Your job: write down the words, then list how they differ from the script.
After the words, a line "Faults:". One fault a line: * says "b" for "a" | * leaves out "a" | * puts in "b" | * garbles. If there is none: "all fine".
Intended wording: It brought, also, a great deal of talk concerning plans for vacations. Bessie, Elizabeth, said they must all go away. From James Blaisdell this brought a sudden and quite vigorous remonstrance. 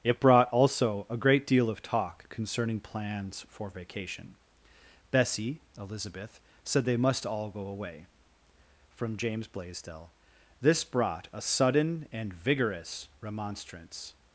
It brought, also, a great deal of talk concerning plans for vacation. Bessie, Elizabeth, said they must all go away. From James Blaisdell this brought a sudden and vigorous remonstrance.
Faults:
* says "vacation" for "vacations"
* leaves out "quite"